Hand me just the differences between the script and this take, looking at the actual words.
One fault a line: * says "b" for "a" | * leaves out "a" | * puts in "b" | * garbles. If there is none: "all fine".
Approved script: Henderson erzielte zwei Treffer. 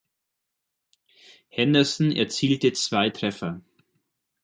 all fine